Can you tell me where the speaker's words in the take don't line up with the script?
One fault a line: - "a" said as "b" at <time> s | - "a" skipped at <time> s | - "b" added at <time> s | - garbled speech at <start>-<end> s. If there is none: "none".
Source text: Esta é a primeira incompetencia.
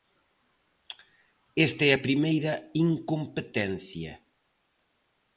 none